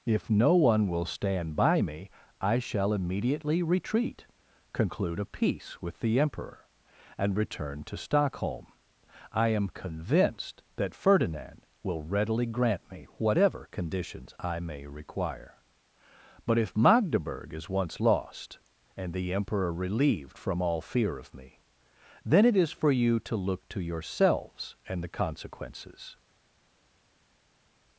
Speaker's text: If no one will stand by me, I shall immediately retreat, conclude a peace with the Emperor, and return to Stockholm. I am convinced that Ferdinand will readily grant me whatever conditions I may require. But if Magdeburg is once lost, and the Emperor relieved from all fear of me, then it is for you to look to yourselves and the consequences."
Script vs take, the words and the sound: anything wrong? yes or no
no